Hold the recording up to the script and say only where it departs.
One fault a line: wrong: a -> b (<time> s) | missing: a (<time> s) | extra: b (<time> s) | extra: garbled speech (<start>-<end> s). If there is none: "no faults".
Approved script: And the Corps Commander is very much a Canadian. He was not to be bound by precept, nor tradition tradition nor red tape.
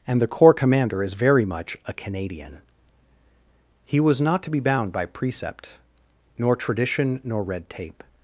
missing: tradition (7.2 s)